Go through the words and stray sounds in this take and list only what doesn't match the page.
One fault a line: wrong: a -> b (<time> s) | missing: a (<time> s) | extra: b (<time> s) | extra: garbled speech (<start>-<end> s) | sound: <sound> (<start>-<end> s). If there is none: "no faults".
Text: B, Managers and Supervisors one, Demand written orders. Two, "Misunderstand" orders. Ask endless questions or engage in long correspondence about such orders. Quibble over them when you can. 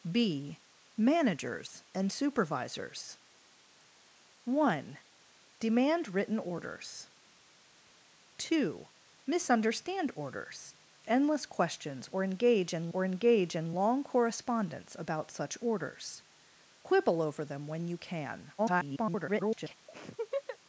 missing: Ask (10.7 s)
extra: or engage in (12.9 s)
extra: garbled speech (18.6-19.7 s)
sound: laugh (19.9-20.6 s)